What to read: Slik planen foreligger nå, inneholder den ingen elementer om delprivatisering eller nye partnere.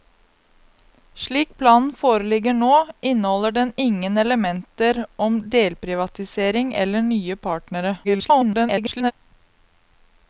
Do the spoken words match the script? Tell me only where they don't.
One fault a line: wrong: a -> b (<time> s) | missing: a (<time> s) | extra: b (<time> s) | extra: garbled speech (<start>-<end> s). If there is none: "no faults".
extra: garbled speech (8.0-9.1 s)